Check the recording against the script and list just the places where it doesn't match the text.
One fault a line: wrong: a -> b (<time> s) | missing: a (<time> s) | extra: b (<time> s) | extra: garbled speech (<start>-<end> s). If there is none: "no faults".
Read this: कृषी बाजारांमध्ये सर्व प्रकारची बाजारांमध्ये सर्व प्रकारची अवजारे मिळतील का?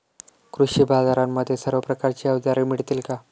missing: बाजारांमध्ये सर्व प्रकारची (2.3 s)